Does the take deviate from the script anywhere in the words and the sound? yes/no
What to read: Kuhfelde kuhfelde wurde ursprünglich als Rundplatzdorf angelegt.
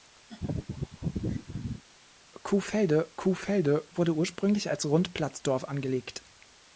yes